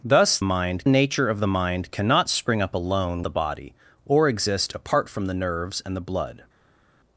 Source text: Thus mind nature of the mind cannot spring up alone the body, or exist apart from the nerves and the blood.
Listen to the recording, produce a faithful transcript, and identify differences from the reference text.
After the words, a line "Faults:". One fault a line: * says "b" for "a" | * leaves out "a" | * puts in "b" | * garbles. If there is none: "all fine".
Thus mind nature of the mind cannot spring up alone the body, or exist apart from the nerves and the blood.
Faults:
all fine